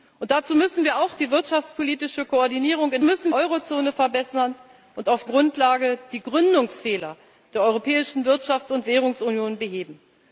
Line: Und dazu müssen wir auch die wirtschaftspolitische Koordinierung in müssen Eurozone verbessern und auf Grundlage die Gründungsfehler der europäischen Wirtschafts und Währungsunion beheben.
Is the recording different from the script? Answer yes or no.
no